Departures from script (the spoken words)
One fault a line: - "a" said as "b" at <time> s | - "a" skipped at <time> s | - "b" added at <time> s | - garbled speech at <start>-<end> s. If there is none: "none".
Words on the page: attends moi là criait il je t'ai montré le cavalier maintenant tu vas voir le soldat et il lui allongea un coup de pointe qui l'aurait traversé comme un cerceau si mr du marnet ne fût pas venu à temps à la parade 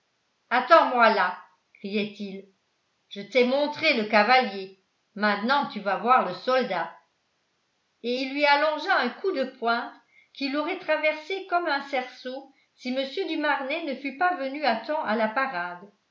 none